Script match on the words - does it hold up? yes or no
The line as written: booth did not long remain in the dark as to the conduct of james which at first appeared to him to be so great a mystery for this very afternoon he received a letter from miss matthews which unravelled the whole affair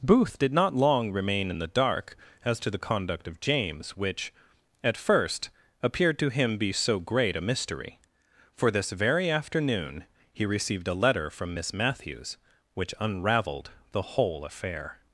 no